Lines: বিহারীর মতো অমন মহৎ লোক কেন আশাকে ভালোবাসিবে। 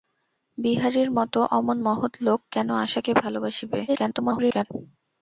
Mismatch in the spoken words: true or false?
true